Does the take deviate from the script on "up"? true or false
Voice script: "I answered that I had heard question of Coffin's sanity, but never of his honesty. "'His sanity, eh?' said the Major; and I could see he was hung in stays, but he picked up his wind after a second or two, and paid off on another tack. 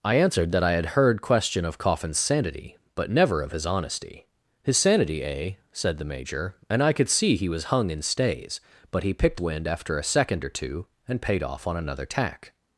true